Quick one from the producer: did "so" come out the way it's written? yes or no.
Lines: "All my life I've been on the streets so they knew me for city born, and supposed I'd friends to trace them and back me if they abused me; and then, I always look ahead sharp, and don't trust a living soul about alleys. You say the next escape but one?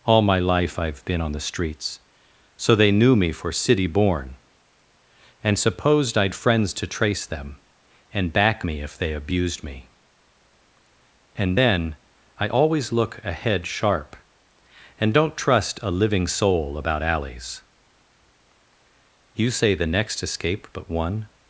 yes